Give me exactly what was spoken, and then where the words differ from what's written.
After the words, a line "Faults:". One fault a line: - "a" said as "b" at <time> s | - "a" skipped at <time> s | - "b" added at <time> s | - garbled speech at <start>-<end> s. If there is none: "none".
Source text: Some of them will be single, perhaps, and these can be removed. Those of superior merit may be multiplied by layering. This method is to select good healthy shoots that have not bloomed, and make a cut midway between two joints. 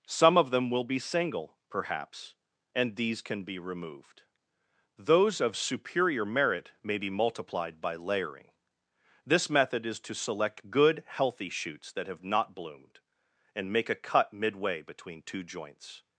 Some of them will be single, perhaps, and these can be removed. Those of superior merit may be multiplied by layering. This method is to select good healthy shoots that have not bloomed, and make a cut midway between two joints.
Faults:
none